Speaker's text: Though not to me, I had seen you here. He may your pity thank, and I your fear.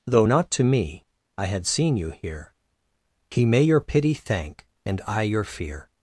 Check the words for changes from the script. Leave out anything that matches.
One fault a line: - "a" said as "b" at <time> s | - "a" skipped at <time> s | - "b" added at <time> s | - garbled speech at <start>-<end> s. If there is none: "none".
none